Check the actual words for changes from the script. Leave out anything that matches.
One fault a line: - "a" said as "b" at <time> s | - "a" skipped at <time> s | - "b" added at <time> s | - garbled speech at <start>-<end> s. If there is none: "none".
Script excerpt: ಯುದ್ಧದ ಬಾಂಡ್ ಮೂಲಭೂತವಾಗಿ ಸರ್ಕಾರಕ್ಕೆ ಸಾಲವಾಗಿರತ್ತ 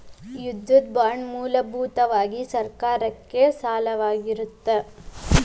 none